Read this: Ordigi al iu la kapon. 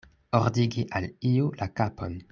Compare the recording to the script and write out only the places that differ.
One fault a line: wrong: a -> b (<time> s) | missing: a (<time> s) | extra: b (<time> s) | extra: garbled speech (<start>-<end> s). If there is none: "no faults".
no faults